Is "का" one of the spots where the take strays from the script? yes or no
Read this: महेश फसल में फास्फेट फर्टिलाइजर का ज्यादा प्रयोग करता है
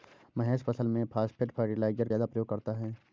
yes